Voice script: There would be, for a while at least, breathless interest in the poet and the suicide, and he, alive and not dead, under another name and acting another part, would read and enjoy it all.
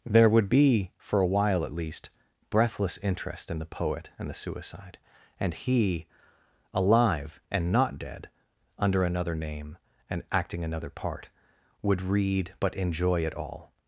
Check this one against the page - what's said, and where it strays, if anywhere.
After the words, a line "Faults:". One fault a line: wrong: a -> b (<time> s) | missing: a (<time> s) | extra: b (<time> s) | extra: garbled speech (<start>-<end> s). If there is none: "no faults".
There would be, for a while at least, breathless interest in the poet and the suicide, and he, alive and not dead, under another name and acting another part, would read but enjoy it all.
Faults:
wrong: and -> but (12.6 s)